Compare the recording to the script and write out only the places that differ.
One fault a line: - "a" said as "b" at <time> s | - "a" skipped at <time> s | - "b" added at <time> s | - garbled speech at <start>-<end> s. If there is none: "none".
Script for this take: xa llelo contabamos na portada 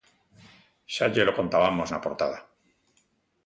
none